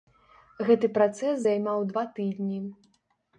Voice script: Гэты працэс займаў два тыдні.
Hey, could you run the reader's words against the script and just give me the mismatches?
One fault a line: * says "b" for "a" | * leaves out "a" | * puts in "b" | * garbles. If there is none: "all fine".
all fine